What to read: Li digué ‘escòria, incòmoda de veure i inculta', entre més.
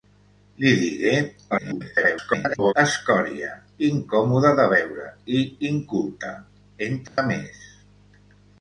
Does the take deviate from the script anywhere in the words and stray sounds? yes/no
yes